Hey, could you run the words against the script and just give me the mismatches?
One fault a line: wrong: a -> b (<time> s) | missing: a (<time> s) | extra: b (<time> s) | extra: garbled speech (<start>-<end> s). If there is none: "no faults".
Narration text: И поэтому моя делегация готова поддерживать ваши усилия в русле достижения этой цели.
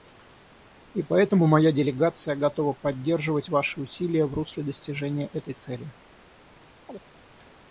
no faults